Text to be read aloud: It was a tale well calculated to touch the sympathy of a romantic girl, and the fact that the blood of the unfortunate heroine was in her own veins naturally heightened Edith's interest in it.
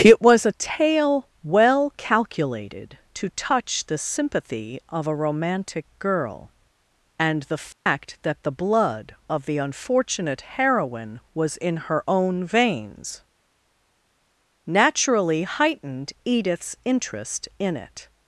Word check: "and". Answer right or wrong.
right